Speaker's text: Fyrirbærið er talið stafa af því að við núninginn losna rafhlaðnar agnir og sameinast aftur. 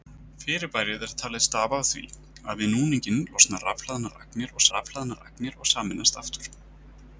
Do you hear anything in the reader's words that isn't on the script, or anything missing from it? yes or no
yes